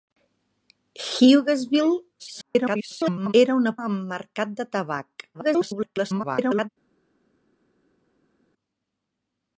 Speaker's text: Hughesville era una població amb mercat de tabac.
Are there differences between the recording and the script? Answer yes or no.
yes